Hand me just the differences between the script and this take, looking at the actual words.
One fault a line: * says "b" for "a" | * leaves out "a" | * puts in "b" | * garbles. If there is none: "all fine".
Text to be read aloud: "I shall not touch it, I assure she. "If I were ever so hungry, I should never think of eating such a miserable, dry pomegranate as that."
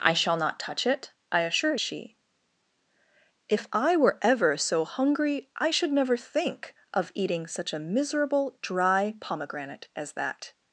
all fine